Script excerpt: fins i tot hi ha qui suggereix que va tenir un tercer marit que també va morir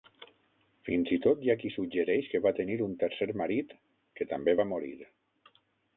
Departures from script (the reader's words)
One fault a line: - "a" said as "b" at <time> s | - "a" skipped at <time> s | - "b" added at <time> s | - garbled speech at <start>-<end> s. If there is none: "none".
none